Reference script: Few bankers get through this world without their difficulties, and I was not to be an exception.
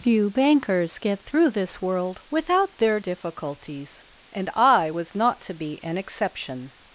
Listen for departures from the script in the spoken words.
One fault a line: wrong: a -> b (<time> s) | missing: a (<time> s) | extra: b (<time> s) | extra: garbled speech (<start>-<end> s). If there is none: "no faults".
no faults